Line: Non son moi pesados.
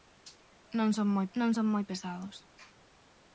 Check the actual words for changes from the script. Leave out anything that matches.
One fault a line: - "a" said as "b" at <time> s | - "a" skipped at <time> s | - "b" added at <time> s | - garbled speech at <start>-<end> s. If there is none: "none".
- "non son moi" added at 1.4 s